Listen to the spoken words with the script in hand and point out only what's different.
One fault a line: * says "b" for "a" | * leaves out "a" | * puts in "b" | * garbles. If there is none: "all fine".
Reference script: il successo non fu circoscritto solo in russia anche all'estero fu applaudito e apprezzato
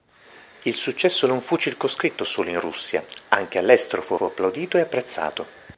* puts in "fu"